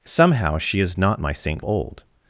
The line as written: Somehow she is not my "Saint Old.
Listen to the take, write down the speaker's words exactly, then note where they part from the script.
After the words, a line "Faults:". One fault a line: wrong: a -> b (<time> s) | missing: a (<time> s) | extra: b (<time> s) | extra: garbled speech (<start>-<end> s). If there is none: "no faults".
Somehow she is not my "Saint Old.
Faults:
no faults